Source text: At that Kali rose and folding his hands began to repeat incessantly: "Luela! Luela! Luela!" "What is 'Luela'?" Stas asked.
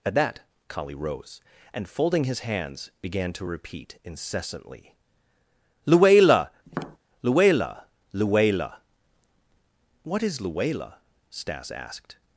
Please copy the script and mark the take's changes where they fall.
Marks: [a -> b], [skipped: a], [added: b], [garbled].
At that Kali rose and folding his hands began to repeat incessantly: "Luela! Luela! Luela!" "What is 'Luela'?" Stas asked.